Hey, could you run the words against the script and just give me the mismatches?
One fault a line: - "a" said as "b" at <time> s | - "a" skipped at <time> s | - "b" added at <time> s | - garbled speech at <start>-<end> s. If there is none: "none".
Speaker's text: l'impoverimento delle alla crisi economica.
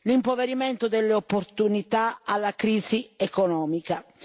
- "opportunità" added at 1.1 s